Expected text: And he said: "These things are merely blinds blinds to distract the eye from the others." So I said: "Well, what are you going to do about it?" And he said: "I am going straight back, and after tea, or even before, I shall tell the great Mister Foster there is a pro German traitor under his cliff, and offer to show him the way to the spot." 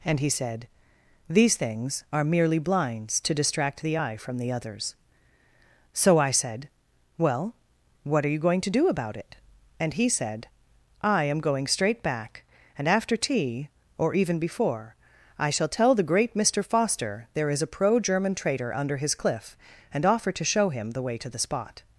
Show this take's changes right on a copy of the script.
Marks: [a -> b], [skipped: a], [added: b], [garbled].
And he said: "These things are merely blinds [skipped: blinds] to distract the eye from the others." So I said: "Well, what are you going to do about it?" And he said: "I am going straight back, and after tea, or even before, I shall tell the great Mister Foster there is a pro German traitor under his cliff, and offer to show him the way to the spot."